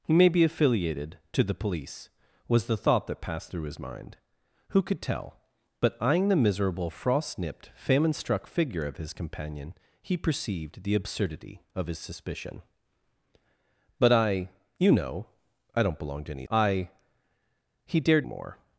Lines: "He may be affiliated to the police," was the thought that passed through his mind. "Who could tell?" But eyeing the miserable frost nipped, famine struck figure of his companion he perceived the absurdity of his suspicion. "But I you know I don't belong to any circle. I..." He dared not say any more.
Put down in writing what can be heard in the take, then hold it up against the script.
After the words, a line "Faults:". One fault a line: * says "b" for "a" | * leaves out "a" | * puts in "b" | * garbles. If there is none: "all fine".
"He may be affiliated to the police," was the thought that passed through his mind. "Who could tell?" But eyeing the miserable frost nipped, famine struck figure of his companion he perceived the absurdity of his suspicion. "But I you know I don't belong to any. I..." He dared more.
Faults:
* leaves out "circle"
* leaves out "not say any"